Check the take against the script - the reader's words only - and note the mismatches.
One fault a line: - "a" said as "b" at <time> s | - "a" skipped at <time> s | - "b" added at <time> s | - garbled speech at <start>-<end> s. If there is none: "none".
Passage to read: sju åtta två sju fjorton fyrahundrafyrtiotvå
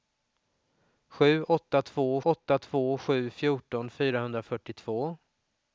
- "åtta två" added at 2.2 s